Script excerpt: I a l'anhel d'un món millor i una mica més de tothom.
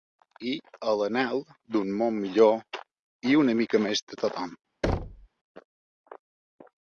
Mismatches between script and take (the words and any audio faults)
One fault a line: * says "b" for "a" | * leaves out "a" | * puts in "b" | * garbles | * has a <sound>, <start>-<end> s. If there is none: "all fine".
* has a thud, 4.8-5.3 s